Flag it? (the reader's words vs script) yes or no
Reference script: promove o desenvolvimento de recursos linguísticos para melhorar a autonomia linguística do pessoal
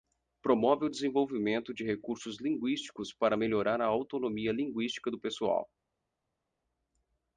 no